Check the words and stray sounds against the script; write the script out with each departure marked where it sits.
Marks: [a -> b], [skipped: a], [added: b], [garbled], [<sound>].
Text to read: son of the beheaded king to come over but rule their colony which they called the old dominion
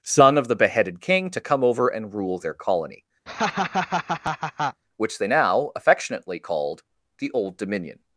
son of the beheaded king to come over [but -> and] rule their colony [laugh] which they [added: now affectionately] called the old dominion